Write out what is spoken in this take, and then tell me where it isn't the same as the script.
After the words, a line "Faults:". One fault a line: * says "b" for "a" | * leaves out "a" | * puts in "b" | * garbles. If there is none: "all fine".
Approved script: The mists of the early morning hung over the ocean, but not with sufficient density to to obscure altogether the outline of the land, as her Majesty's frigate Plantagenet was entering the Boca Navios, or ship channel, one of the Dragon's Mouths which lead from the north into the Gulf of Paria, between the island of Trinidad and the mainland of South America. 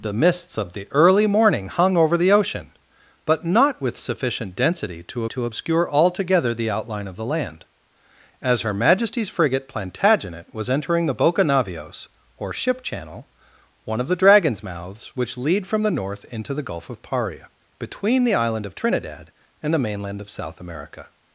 The mists of the early morning hung over the ocean, but not with sufficient density to to obscure altogether the outline of the land, as her Majesty's frigate Plantagenet was entering the Boca Navios, or ship channel, one of the Dragon's Mouths which lead from the north into the Gulf of Paria, between the island of Trinidad and the mainland of South America.
Faults:
all fine